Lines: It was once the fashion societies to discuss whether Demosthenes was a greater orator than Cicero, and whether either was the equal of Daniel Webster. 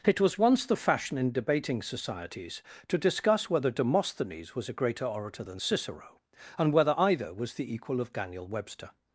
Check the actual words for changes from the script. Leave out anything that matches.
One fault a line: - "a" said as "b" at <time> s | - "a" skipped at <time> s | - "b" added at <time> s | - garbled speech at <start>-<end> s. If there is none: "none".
- "in debating" added at 1.2 s